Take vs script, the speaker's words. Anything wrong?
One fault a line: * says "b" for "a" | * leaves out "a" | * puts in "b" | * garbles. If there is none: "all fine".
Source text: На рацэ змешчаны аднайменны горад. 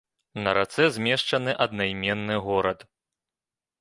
all fine